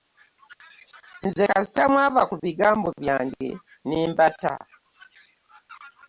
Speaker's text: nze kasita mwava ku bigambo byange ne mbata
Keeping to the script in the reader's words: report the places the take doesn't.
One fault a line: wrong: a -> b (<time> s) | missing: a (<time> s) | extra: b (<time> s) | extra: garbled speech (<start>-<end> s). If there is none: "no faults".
no faults